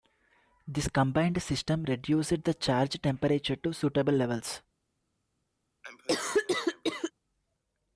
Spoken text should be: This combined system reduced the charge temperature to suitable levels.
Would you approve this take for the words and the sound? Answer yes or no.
no